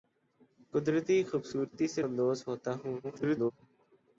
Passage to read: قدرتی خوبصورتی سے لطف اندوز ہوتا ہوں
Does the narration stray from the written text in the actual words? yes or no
yes